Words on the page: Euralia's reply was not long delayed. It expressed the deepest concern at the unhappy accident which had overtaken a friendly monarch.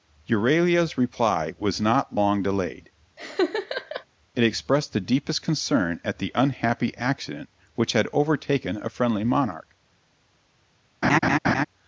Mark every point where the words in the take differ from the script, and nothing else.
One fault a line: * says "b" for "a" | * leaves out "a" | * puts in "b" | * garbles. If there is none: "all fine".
all fine